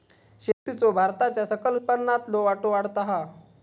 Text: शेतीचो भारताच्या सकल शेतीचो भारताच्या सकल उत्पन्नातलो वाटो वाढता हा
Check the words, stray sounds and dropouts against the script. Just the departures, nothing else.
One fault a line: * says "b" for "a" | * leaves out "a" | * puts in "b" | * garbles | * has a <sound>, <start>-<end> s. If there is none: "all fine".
* has a dropout, 0.5-0.7 s
* leaves out "शेतीचो भारताच्या सकल"